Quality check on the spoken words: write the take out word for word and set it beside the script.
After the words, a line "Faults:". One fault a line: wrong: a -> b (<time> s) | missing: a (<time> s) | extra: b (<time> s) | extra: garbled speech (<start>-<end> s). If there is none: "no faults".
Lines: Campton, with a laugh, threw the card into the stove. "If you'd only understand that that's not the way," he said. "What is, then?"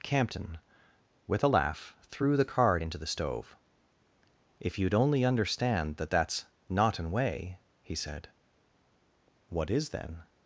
Campton, with a laugh, threw the card into the stove. "If you'd only understand that that's not an way," he said. "What is, then?"
Faults:
wrong: the -> an (7.0 s)